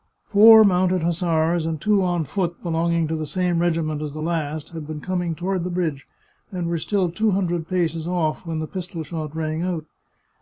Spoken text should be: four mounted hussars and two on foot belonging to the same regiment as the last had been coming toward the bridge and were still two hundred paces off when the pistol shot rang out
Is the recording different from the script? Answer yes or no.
no